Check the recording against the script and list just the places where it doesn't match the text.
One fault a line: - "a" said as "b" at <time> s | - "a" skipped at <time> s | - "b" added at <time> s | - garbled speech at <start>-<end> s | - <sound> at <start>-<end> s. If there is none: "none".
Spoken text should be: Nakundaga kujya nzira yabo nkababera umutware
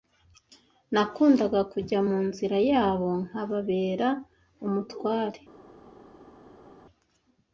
- "mu" added at 2.1 s